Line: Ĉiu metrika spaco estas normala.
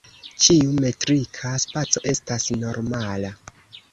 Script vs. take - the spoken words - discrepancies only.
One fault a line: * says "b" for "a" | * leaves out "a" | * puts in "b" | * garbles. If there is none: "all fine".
all fine